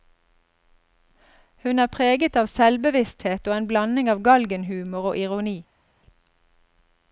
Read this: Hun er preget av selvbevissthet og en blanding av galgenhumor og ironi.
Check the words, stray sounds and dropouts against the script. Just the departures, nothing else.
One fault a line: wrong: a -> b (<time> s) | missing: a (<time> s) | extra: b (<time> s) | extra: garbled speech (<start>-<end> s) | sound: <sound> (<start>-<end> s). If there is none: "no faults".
no faults